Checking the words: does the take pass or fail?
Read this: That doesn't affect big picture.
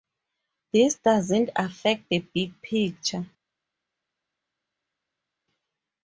fail